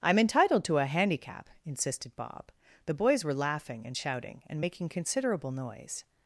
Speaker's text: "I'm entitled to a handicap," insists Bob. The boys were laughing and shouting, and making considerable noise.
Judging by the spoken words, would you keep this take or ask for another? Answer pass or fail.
fail